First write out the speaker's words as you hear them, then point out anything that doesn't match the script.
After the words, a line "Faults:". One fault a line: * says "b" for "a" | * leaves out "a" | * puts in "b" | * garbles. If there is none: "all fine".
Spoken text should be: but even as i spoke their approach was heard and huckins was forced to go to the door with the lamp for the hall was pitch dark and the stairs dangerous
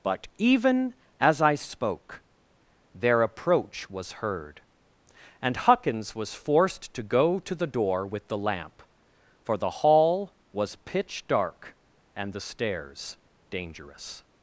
but even as i spoke their approach was heard and huckins was forced to go to the door with the lamp for the hall was pitch dark and the stairs dangerous
Faults:
all fine